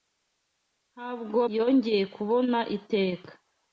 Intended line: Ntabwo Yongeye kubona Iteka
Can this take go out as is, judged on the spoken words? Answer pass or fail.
pass